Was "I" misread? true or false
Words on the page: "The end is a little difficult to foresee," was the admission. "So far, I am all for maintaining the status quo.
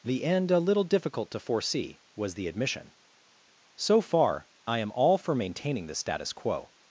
false